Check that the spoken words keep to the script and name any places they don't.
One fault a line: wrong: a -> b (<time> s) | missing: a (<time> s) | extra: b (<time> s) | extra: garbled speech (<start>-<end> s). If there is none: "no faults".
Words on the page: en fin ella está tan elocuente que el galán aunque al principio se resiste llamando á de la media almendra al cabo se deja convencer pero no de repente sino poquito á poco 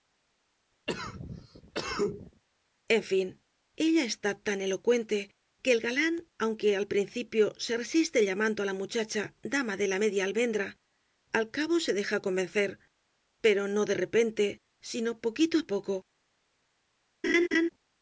extra: la muchacha dama (8.7 s)